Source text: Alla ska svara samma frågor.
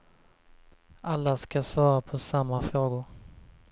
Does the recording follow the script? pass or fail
fail